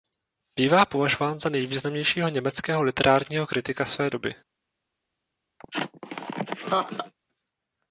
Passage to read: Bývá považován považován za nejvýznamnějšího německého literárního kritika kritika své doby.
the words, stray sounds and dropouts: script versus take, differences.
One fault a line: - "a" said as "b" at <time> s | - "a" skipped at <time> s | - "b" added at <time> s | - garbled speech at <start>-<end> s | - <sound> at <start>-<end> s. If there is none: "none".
- "považován" skipped at 1.4 s
- "kritika" skipped at 3.9 s
- laugh at 5.6-7.1 s